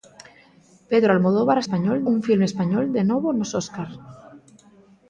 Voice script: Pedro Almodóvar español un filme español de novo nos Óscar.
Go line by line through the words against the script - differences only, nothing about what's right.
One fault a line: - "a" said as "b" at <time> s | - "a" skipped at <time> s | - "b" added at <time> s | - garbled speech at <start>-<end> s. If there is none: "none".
none